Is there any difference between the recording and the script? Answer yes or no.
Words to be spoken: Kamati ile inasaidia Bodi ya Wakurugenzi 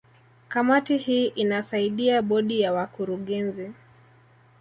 yes